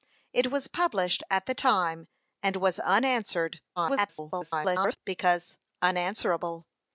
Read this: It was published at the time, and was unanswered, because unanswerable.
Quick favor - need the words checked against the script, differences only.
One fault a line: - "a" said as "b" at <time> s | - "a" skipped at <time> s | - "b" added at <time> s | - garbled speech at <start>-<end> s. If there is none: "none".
- garbled speech at 3.8-5.0 s